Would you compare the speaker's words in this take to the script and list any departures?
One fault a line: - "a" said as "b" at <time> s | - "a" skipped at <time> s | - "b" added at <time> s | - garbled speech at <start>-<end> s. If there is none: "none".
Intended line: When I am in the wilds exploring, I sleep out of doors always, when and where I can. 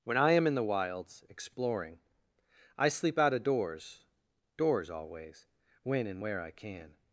- "doors" added at 4.6 s